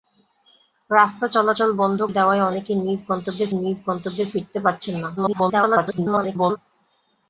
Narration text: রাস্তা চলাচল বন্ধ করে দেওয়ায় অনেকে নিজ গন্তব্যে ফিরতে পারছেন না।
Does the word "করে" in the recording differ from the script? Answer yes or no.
yes